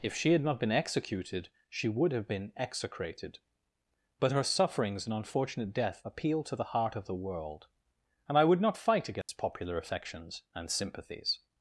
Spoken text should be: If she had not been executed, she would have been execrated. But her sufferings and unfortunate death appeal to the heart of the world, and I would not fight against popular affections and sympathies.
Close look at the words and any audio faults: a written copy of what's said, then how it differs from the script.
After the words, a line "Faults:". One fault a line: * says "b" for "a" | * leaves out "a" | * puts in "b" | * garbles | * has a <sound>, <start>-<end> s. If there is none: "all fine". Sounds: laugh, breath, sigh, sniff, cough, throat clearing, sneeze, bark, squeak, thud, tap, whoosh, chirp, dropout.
If she had not been executed, she would have been execrated. But her sufferings and unfortunate death appeal to the heart of the world, and I would not fight against popular affections and sympathies.
Faults:
* has a dropout, 9.2-9.3 s